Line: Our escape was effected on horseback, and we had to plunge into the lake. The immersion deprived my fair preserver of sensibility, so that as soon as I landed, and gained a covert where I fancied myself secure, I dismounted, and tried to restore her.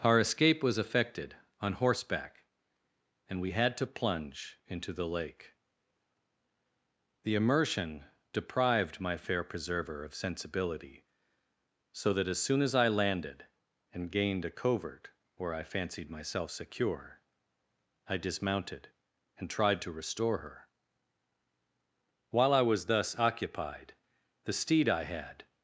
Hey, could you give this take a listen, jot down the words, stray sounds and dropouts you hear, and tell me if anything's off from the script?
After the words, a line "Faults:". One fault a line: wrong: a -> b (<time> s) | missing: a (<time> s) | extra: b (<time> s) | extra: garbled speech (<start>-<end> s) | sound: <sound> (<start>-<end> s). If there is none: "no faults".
Our escape was effected on horseback, and we had to plunge into the lake. The immersion deprived my fair preserver of sensibility, so that as soon as I landed, and gained a covert where I fancied myself secure, I dismounted, and tried to restore her. While I was thus occupied, the steed I had
Faults:
extra: While I was thus occupied the steed I had (22.3 s)